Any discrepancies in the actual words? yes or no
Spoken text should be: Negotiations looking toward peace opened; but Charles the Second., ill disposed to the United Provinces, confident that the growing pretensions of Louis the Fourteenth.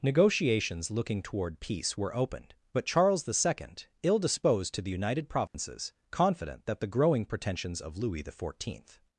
yes